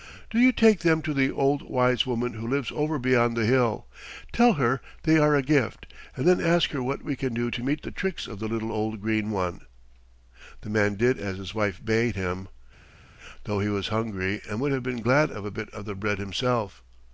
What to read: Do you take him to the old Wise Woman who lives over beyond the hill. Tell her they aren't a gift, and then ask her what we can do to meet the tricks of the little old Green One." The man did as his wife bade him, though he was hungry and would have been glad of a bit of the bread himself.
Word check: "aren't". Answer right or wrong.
wrong